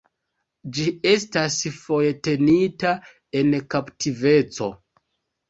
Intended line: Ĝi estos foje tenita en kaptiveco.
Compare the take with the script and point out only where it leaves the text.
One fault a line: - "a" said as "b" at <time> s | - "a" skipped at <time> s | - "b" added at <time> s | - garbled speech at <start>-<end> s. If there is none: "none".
- "estos" said as "estas" at 1.1 s